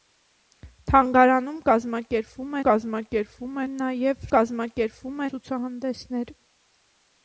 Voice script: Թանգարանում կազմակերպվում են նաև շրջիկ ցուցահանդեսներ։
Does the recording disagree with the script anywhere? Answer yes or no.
yes